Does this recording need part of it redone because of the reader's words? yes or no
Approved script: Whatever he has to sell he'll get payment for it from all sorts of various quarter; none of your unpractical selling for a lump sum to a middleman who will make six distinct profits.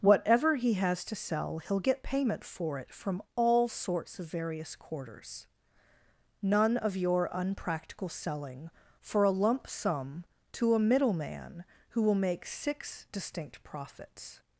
yes